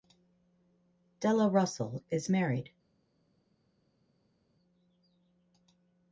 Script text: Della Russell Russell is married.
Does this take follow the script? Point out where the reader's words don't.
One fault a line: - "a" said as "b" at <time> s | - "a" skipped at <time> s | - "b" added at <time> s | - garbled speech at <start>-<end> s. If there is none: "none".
- "Russell" skipped at 2.0 s